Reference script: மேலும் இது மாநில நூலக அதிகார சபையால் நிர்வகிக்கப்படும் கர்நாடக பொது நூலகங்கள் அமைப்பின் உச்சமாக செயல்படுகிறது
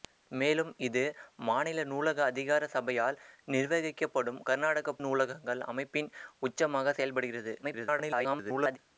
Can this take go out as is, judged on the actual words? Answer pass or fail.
fail